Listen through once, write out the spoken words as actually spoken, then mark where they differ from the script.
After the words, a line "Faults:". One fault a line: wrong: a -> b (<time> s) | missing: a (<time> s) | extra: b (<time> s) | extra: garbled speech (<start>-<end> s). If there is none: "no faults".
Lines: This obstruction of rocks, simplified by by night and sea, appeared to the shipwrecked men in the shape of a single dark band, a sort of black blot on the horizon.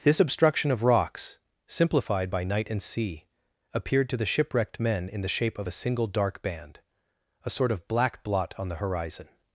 This obstruction of rocks, simplified by night and sea, appeared to the shipwrecked men in the shape of a single dark band, a sort of black blot on the horizon.
Faults:
missing: by (2.4 s)